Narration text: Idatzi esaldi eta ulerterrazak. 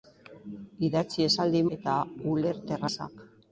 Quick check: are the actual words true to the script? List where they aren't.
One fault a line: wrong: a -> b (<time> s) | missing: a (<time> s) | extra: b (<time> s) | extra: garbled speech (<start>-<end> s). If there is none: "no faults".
no faults